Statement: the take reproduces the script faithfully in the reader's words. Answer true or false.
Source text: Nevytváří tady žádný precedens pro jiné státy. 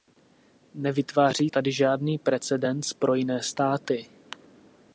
true